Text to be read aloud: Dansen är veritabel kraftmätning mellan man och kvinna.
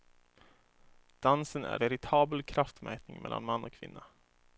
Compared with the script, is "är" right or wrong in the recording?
right